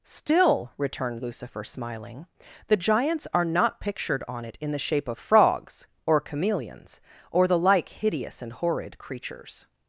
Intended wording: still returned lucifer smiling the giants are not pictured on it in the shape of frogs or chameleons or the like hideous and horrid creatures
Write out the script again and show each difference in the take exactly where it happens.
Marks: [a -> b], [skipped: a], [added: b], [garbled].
still returned lucifer smiling the giants are not pictured on it in the shape of frogs or chameleons or the like hideous and horrid creatures